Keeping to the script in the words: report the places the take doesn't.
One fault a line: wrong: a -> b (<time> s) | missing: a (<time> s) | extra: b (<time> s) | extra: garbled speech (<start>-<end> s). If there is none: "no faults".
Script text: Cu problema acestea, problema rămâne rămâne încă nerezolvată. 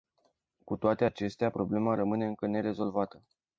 wrong: problema -> toate (0.8 s)
missing: rămâne (2.3 s)